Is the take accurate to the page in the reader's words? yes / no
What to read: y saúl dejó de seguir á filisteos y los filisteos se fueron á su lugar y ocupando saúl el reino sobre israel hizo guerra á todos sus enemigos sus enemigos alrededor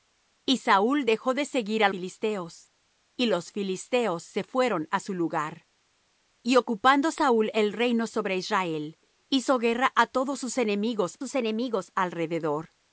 yes